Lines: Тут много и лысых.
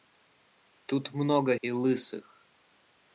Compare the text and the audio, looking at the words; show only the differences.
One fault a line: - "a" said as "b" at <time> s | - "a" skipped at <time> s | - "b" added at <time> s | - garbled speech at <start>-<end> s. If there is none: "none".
none